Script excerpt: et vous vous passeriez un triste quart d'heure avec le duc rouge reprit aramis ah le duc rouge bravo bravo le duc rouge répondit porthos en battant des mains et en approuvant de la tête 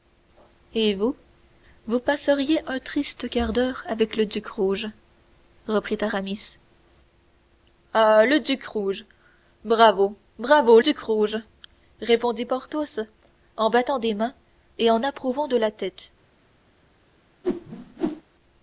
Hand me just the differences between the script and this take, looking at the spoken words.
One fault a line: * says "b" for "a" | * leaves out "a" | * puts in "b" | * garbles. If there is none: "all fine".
* leaves out "le"